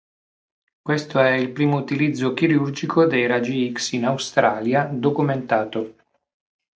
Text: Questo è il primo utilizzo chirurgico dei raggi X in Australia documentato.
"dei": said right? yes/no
yes